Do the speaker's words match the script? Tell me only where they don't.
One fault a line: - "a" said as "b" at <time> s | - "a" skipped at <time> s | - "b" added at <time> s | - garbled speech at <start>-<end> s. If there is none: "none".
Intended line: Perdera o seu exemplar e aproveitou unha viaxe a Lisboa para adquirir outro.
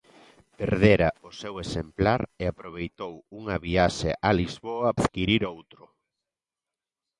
- "para" skipped at 4.9 s